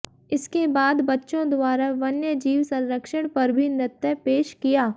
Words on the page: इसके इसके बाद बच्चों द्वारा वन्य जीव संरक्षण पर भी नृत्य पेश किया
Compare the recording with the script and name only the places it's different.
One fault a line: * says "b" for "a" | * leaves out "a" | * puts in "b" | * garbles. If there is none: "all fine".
* leaves out "इसके"